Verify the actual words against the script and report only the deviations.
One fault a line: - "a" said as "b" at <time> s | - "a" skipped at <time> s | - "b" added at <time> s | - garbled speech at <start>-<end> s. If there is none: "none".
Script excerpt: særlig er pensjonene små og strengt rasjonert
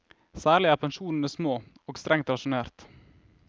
none